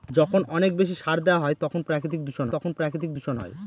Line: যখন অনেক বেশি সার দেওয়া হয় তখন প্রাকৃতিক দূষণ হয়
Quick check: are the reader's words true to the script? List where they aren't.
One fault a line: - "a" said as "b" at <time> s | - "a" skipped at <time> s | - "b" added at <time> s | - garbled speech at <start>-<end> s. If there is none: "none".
- "তখন প্রাকৃতিক দূষণ" added at 2.5 s